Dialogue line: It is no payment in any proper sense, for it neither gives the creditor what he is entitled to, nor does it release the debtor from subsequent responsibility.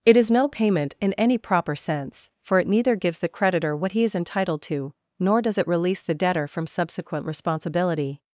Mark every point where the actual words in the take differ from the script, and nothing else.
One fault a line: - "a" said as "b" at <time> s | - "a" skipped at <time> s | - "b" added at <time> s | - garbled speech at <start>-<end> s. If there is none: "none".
none